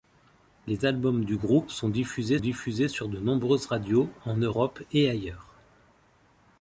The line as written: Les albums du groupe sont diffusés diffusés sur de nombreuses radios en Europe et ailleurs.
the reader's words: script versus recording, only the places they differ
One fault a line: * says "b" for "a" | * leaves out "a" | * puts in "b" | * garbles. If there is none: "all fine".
all fine